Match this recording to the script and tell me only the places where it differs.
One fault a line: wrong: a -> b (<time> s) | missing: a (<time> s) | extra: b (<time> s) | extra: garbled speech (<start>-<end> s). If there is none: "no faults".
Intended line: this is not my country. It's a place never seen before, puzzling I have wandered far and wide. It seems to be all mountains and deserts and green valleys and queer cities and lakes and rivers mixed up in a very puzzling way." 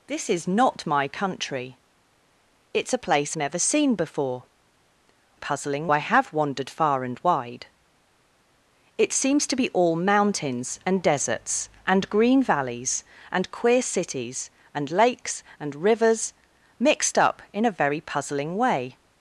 no faults